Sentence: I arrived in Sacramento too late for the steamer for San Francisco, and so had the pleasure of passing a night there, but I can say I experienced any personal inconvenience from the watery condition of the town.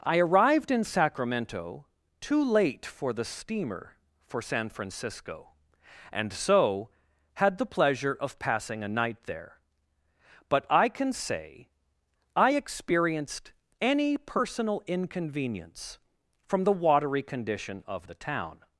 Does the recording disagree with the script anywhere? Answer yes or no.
no